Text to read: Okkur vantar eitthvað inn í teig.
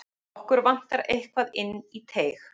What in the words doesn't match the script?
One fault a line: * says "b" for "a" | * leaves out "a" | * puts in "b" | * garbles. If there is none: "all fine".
all fine